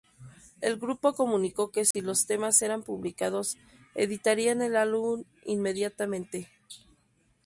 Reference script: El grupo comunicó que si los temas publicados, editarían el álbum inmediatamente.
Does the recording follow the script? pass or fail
fail